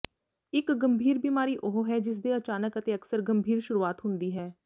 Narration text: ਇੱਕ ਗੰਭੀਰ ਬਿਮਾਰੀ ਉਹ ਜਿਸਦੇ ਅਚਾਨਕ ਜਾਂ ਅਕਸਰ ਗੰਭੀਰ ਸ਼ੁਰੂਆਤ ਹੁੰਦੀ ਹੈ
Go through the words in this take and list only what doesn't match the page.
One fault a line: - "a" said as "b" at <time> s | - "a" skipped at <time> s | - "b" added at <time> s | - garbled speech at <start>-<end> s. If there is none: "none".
- "ਹੈ" added at 1.9 s
- "ਜਾਂ" said as "ਅਤੇ" at 2.8 s